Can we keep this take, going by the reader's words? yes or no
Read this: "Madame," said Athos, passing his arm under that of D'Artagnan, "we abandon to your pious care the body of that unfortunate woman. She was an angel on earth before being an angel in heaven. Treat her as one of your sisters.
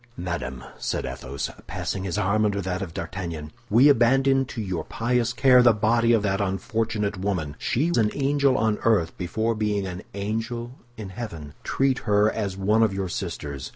no